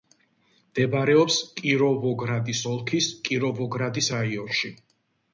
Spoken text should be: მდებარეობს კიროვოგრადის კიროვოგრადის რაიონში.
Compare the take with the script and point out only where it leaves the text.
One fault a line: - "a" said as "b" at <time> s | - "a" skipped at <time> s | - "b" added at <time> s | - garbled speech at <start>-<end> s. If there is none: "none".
- "ოლქის" added at 2.7 s